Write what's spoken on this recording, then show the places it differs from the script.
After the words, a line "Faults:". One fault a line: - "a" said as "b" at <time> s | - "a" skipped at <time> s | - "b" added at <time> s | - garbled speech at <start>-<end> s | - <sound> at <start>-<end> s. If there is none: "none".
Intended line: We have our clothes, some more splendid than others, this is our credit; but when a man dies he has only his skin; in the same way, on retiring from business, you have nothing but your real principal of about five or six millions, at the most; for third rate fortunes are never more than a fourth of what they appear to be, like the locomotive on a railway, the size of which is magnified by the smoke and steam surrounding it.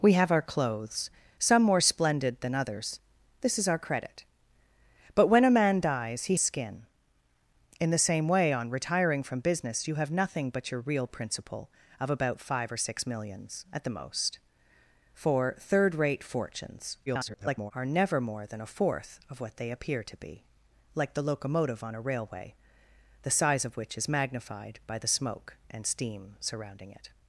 We have our clothes, some more splendid than others, this is our credit; but when a man dies he skin; in the same way, on retiring from business, you have nothing but your real principal of about five or six millions, at the most; for third rate fortunes [garbled] are never more than a fourth of what they appear to be, like the locomotive on a railway, the size of which is magnified by the smoke and steam surrounding it.
Faults:
- "has only his" skipped at 6.4 s
- garbled speech at 17.1-17.7 s